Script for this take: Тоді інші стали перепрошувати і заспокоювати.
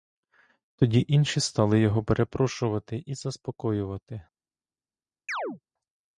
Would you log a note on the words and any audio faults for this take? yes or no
yes